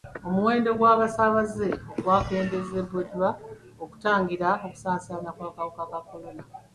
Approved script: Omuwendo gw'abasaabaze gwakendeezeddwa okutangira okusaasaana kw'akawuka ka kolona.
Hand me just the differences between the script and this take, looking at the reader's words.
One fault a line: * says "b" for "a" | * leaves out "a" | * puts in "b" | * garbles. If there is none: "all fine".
all fine